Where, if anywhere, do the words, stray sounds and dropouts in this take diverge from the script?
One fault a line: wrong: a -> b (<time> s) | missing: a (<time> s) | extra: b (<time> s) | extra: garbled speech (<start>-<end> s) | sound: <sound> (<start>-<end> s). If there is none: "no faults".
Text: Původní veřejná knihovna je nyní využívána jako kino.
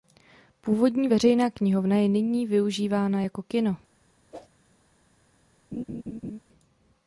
sound: whoosh (4.3-4.5 s)
sound: laugh (5.7-6.4 s)